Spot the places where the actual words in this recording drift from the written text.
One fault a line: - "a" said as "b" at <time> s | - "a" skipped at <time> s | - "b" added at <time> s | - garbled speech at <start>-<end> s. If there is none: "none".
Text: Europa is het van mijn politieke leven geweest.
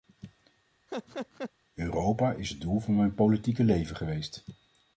- "doel" added at 2.6 s